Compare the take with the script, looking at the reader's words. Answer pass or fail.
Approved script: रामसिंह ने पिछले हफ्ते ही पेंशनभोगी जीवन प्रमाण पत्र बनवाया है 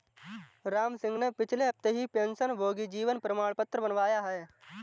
pass